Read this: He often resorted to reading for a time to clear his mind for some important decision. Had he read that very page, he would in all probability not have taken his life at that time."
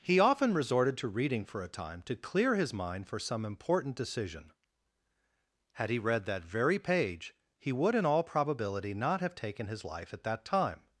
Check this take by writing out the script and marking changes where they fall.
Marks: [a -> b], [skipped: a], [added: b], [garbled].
He often resorted to reading for a time to clear his mind for some important decision. Had he read that very page, he would in all probability not have taken his life at that time."